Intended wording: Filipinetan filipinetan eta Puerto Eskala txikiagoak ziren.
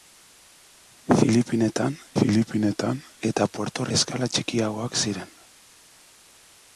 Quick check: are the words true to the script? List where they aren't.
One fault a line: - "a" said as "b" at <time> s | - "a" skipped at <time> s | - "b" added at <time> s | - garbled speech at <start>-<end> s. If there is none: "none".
none